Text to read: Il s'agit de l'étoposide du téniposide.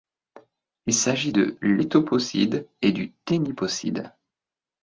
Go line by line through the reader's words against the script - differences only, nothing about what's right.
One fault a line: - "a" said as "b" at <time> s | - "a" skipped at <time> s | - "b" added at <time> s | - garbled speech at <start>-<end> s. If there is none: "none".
- "et" added at 2.8 s